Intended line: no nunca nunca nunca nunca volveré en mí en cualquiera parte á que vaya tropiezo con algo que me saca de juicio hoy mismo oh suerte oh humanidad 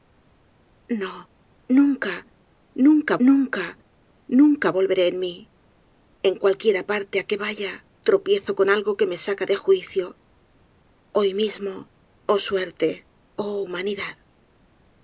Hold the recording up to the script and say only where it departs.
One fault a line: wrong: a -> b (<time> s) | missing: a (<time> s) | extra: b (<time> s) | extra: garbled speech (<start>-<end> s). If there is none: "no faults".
no faults